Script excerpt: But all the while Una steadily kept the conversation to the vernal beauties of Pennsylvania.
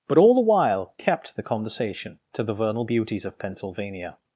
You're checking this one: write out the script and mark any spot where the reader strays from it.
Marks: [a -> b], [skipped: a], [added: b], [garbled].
But all the while [skipped: Una steadily] kept the conversation to the vernal beauties of Pennsylvania.